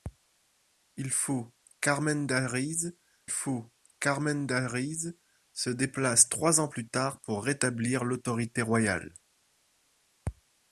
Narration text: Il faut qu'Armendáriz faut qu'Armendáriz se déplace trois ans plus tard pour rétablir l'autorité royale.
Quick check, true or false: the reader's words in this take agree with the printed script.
true